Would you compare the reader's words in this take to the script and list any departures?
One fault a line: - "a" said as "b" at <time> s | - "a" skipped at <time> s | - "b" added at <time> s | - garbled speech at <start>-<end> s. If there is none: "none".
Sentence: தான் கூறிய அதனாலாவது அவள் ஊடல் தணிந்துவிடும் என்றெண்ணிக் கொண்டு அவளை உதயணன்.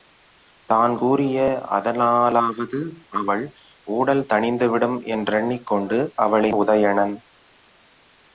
none